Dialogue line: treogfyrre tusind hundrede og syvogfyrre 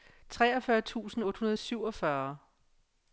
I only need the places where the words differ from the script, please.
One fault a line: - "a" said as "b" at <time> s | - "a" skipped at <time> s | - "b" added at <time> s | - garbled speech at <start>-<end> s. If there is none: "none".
- "otte" added at 1.2 s